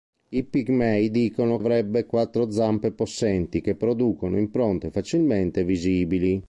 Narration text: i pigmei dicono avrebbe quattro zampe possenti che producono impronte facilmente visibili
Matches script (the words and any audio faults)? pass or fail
pass